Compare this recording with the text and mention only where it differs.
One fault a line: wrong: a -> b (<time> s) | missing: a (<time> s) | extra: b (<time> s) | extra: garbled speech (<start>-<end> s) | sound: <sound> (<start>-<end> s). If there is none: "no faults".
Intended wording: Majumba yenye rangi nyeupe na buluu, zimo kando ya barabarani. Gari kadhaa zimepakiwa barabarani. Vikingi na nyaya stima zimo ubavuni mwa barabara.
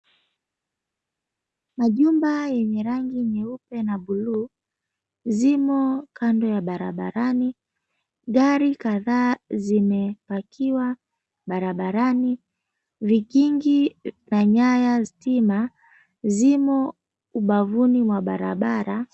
no faults